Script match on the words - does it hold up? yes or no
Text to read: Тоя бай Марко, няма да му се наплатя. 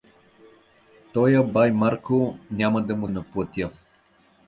no